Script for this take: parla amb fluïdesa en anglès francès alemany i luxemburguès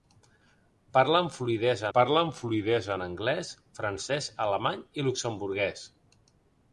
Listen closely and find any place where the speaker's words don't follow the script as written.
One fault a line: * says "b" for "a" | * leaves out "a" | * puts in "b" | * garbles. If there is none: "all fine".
* puts in "parla amb fluïdesa"